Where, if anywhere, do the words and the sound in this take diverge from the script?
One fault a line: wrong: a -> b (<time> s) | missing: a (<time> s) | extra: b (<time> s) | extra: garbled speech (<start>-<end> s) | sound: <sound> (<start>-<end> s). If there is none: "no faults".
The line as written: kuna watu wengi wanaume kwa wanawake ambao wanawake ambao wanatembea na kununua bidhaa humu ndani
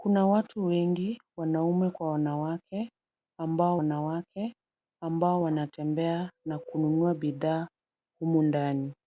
no faults